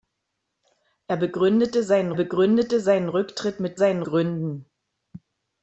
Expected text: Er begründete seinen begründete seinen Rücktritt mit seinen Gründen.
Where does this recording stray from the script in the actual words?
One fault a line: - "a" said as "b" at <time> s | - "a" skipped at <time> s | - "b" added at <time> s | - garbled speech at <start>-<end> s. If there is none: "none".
none